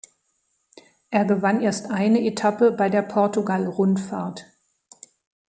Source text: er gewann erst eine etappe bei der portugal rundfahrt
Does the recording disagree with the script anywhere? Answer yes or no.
no